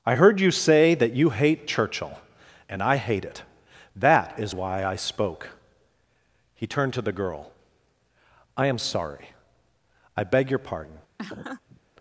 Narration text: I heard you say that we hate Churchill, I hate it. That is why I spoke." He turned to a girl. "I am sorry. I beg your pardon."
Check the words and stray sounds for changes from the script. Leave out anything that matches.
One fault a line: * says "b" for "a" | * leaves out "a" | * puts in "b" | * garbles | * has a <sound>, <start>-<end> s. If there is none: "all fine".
* says "you" for "we"
* puts in "and"
* says "the" for "a"
* has a laugh, 11.2-11.8 s